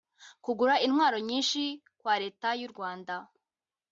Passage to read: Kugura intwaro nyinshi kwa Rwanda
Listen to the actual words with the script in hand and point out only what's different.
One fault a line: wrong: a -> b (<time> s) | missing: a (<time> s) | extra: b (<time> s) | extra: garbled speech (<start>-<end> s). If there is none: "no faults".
extra: Leta y'u (2.2 s)